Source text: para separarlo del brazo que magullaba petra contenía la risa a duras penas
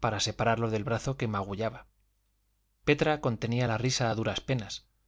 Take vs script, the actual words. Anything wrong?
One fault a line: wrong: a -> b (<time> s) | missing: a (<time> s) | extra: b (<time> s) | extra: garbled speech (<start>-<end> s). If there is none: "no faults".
no faults